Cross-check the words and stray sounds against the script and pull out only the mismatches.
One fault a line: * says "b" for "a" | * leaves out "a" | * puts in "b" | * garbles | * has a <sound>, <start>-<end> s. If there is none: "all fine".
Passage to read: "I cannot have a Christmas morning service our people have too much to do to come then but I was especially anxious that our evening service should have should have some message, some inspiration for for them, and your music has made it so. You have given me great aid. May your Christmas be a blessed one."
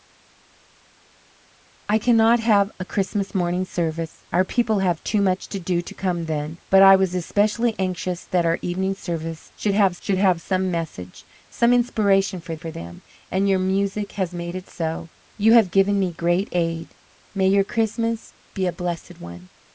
all fine